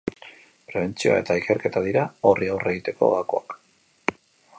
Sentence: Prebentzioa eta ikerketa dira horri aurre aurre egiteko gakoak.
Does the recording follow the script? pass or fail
fail